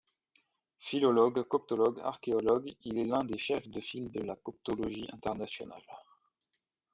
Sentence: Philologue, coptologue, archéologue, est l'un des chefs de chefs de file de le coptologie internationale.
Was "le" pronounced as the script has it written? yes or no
no